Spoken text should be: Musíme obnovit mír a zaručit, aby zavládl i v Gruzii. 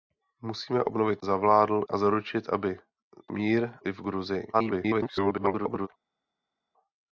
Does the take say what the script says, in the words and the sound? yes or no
no